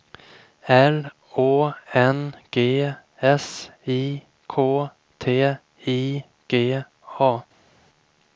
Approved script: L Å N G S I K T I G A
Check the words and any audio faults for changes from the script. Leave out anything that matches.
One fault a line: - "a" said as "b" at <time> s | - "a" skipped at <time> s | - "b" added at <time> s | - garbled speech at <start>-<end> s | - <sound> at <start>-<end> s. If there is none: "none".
none